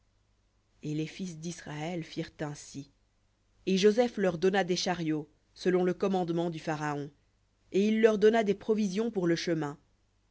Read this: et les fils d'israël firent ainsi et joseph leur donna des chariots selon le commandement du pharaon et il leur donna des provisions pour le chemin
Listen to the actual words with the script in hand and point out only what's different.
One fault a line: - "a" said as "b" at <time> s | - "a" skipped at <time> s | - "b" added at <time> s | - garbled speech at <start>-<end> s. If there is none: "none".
none